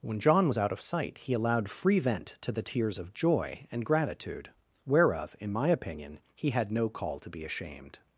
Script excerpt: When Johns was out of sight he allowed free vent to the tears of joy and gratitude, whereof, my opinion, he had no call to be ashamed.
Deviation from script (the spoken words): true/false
true